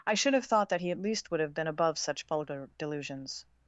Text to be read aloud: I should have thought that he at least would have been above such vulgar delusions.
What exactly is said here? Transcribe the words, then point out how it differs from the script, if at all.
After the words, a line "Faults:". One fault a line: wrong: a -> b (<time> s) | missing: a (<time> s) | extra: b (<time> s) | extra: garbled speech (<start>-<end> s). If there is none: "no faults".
I should have thought that he at least would have been above such vulgar delusions.
Faults:
no faults